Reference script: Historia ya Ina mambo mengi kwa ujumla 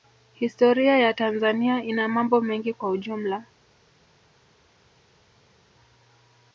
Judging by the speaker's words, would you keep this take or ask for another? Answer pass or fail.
fail